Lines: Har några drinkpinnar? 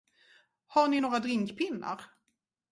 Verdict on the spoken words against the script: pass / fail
fail